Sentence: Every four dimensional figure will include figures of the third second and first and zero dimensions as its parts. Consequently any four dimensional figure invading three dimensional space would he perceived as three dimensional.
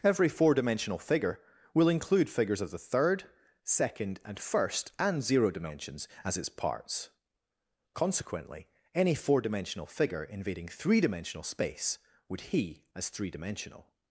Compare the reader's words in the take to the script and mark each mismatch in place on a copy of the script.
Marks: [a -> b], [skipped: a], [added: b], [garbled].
Every four dimensional figure will include figures of the third second and first and zero dimensions as its parts. Consequently any four dimensional figure invading three dimensional space would he [skipped: perceived] as three dimensional.